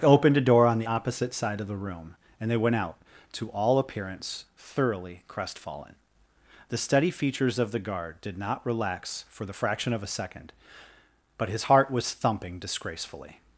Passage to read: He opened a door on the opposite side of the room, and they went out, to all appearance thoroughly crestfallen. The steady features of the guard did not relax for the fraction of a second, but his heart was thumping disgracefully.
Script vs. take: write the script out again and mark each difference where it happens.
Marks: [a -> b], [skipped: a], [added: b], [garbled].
[skipped: He] opened a door on the opposite side of the room, and they went out, to all appearance thoroughly crestfallen. The steady features of the guard did not relax for the fraction of a second, but his heart was thumping disgracefully.